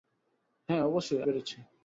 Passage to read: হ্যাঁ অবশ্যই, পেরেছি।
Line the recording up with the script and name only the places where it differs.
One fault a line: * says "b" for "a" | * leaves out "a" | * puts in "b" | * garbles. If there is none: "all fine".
all fine